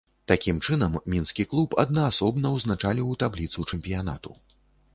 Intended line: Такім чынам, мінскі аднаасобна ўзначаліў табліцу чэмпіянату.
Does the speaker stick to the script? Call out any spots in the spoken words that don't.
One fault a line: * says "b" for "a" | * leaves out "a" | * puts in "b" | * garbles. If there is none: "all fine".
* puts in "клуб"